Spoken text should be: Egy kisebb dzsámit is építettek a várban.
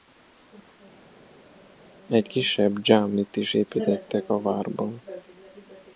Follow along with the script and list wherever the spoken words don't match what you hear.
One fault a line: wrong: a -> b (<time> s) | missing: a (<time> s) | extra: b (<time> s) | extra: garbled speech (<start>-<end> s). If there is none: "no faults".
no faults